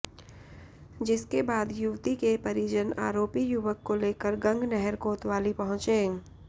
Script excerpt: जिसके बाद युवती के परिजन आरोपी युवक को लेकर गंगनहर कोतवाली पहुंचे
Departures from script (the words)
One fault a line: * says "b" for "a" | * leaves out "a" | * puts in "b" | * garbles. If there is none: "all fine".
all fine